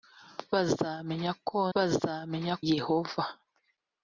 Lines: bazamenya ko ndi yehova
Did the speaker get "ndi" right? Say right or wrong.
wrong